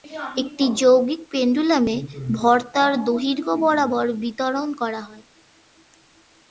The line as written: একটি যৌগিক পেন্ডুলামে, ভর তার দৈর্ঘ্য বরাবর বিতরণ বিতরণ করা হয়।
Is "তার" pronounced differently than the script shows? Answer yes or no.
no